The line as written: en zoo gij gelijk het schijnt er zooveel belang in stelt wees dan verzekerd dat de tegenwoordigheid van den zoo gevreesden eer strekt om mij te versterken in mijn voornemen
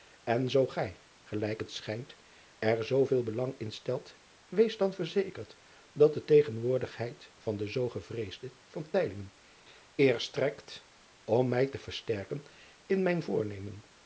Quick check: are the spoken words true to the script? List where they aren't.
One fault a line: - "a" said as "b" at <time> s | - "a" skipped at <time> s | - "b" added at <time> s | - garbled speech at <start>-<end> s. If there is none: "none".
none